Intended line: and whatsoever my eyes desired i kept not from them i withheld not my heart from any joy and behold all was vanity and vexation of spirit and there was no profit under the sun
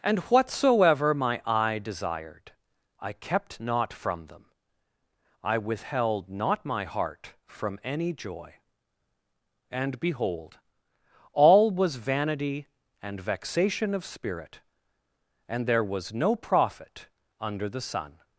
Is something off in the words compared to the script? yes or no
yes